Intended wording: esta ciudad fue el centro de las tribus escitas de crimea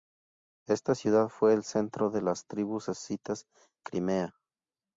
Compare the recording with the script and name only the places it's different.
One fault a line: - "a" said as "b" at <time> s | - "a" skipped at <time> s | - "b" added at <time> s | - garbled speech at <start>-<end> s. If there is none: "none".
- "de" skipped at 3.5 s